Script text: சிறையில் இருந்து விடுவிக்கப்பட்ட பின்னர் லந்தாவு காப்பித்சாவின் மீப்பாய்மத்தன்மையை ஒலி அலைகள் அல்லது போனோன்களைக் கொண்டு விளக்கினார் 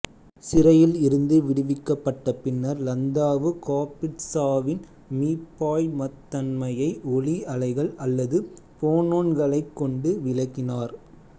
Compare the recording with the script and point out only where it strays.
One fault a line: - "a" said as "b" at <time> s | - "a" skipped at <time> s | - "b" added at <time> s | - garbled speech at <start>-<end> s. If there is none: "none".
none